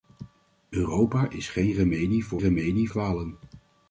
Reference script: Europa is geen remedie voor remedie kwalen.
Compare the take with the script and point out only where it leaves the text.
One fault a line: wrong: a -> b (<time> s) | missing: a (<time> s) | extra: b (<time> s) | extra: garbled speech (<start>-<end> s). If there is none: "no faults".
no faults